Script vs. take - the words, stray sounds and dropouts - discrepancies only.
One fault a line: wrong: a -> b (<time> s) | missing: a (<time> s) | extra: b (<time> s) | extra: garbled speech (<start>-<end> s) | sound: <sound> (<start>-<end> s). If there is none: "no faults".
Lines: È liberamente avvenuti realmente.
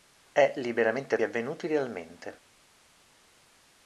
no faults